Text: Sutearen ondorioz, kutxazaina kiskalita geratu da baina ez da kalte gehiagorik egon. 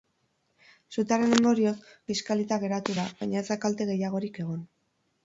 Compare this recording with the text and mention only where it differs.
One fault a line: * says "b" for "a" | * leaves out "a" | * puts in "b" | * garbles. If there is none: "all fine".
* leaves out "kutxazaina"